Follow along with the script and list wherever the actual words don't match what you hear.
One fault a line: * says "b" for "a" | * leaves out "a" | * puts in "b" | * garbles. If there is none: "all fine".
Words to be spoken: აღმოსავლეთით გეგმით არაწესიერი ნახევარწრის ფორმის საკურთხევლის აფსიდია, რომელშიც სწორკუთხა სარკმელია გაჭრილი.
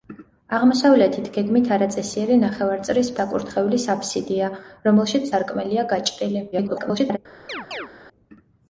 * leaves out "ფორმის"
* leaves out "სწორკუთხა"
* garbles